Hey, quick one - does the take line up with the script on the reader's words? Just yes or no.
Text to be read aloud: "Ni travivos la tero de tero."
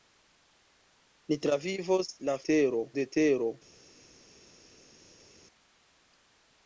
yes